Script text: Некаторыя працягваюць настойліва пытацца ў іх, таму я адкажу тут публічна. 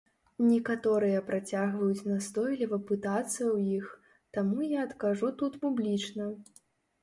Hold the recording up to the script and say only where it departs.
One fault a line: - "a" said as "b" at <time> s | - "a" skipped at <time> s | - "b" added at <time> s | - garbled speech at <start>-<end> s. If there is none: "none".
none